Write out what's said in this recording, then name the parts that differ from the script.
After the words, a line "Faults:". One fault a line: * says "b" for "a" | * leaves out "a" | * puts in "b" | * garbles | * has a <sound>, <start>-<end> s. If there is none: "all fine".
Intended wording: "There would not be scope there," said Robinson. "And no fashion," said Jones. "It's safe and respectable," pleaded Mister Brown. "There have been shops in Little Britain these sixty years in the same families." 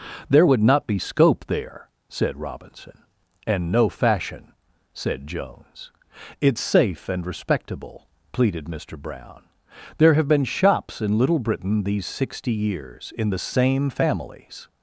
"There would not be scope there," said Robinson. "And no fashion," said Jones. "It's safe and respectable," pleaded Mister Brown. "There have been shops in Little Britain these sixty years in the same families."
Faults:
all fine